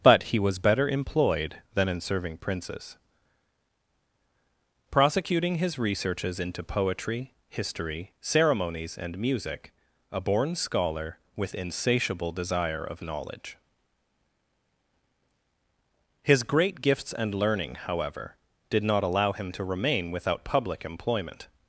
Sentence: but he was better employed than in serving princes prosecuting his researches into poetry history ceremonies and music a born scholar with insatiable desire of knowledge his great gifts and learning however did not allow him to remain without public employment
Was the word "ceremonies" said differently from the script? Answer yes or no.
no